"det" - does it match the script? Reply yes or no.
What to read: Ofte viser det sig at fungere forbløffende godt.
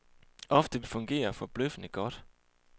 no